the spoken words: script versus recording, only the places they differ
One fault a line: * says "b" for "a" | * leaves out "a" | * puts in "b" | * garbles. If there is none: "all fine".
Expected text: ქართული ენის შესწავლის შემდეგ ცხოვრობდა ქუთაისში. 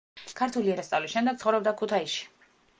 * leaves out "ენის"